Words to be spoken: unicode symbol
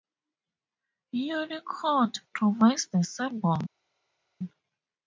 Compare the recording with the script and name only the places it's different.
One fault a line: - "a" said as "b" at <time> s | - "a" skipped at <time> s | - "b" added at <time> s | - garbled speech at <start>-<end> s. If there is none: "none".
- "provides the" added at 2.3 s